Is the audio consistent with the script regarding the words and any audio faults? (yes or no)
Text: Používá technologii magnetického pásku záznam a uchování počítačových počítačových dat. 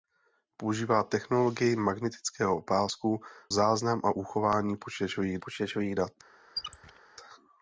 no